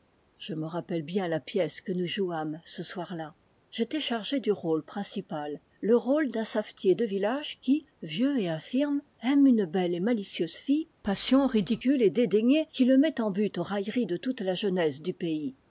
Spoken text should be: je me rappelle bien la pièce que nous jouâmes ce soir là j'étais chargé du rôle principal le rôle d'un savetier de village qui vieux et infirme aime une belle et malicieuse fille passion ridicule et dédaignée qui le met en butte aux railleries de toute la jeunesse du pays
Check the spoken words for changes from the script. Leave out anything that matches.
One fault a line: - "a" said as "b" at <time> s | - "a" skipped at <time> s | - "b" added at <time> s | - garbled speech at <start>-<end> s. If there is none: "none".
none